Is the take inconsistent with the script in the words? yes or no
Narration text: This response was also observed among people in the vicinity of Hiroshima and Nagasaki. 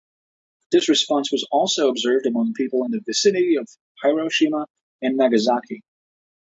no